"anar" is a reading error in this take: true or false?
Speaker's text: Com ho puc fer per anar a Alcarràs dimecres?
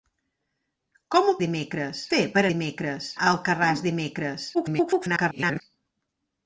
true